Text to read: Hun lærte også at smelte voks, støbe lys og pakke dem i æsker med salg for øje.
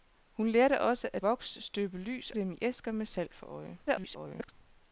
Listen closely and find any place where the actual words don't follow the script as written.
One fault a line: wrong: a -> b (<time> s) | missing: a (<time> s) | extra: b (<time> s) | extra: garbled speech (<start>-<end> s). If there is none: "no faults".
missing: smelte (1.2 s)
missing: og pakke (2.3 s)
extra: garbled speech (3.9-4.5 s)